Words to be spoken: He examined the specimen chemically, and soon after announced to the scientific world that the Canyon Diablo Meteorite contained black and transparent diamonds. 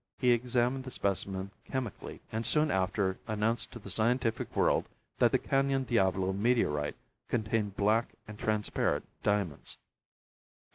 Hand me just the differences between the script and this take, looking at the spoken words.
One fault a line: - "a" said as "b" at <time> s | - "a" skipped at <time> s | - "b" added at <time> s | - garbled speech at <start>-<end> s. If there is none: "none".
none